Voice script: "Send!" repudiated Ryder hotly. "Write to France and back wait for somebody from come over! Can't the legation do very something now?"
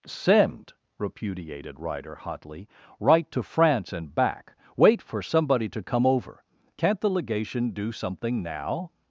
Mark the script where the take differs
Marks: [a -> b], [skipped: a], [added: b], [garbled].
"Send!" repudiated Ryder hotly. "Write to France and back wait for somebody [from -> to] come over! Can't the legation do [skipped: very] something now?"